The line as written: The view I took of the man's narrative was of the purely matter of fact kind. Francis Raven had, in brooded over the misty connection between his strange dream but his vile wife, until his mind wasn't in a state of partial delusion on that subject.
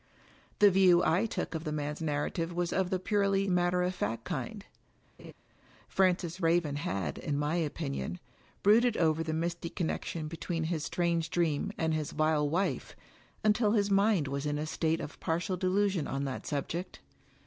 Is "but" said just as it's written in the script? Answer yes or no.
no